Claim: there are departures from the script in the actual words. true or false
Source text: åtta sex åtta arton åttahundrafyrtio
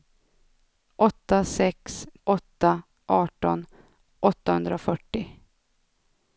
false